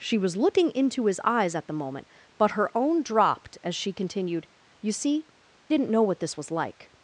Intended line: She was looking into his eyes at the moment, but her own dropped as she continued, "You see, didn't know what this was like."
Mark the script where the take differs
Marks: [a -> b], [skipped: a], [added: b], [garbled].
She was looking into his eyes at the moment, but her own dropped as she continued, "You see, didn't know what this was like."